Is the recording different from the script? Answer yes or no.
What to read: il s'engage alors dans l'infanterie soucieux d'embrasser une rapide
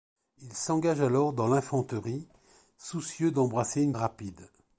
no